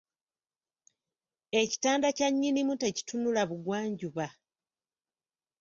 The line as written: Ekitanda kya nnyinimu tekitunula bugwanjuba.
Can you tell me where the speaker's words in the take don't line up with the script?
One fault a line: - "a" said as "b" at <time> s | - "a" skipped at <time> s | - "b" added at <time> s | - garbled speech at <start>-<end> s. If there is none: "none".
none